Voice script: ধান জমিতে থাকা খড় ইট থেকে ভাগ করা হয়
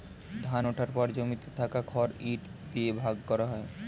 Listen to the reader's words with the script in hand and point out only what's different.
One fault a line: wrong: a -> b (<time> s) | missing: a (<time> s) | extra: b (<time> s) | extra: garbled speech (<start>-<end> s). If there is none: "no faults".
extra: ওঠার পর (0.7 s)
wrong: থেকে -> দিয়ে (2.7 s)